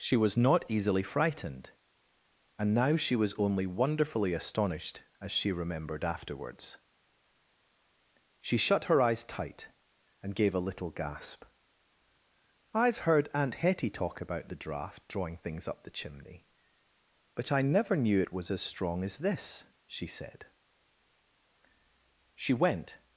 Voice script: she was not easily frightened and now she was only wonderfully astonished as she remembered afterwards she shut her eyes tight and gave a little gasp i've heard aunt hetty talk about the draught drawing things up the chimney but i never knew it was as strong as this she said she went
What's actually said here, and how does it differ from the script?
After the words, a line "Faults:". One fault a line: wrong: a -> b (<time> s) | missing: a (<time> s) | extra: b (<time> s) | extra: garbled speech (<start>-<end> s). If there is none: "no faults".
she was not easily frightened and now she was only wonderfully astonished as she remembered afterwards she shut her eyes tight and gave a little gasp i've heard aunt hetty talk about the draught drawing things up the chimney but i never knew it was as strong as this she said she went
Faults:
no faults